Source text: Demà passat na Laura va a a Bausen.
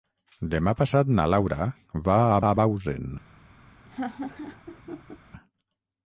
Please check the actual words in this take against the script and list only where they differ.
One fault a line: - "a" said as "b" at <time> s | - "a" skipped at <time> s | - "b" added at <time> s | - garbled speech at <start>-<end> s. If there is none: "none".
none